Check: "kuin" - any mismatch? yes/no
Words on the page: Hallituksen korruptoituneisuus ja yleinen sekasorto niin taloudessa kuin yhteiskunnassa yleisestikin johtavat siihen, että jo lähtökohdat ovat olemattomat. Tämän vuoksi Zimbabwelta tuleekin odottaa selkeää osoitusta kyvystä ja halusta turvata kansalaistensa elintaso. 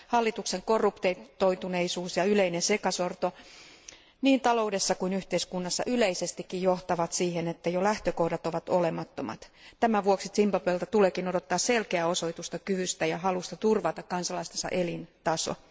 no